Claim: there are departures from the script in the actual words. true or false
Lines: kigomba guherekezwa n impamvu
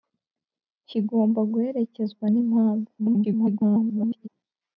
true